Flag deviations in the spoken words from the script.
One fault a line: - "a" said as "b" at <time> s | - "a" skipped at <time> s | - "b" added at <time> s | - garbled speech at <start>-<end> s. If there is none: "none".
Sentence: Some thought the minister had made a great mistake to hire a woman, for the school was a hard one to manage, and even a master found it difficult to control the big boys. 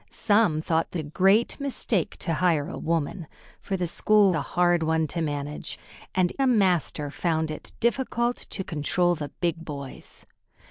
- "minister had made" skipped at 1.0 s
- "was" skipped at 4.3 s
- "even" skipped at 6.3 s